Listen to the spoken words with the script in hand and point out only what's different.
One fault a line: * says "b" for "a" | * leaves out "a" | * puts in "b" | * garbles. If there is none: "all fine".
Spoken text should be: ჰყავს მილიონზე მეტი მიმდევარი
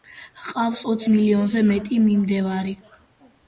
* puts in "ოც"